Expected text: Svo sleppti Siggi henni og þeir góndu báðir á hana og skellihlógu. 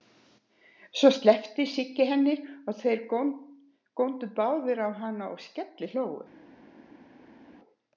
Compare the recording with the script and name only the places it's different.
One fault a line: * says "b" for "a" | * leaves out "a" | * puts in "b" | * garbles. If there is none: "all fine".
all fine